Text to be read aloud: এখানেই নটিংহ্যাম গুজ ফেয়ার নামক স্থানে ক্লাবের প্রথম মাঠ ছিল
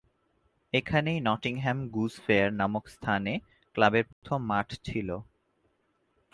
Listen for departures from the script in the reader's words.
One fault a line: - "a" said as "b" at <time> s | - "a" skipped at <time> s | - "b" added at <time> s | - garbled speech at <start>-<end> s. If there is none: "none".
none